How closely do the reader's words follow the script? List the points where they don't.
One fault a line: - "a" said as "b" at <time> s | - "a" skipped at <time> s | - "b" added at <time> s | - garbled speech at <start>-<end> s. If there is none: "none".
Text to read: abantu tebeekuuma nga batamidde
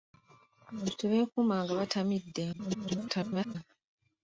- garbled speech at 2.5-3.6 s